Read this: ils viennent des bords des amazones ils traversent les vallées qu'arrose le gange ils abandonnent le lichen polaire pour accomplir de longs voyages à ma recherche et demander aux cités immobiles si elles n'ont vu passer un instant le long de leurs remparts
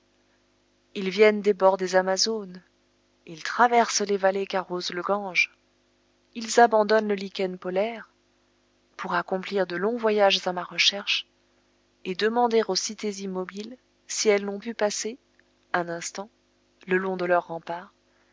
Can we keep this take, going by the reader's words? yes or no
yes